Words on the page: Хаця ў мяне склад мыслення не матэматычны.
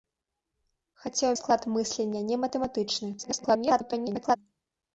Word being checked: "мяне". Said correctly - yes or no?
no